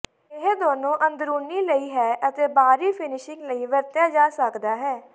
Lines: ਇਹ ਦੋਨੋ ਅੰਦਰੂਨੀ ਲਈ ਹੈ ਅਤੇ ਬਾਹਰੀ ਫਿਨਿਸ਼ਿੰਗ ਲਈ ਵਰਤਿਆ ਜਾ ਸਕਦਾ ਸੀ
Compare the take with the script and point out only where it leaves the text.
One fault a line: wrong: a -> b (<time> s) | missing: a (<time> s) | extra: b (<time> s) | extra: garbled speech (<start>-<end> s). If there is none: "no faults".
wrong: ਸੀ -> ਹੈ (4.8 s)